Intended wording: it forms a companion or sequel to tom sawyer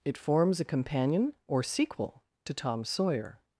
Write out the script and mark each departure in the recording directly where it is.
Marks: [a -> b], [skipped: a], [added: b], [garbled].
it forms a companion or sequel to tom sawyer